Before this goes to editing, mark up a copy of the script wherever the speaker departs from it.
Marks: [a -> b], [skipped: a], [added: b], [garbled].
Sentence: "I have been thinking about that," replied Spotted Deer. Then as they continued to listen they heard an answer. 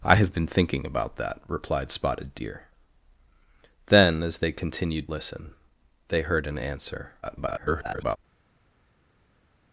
"I have been thinking about that," replied Spotted Deer. Then as they continued [skipped: to] listen they heard an answer. [garbled]